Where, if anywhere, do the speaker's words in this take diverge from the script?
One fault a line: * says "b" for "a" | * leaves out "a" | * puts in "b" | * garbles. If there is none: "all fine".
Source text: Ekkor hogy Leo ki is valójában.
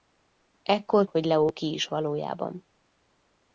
all fine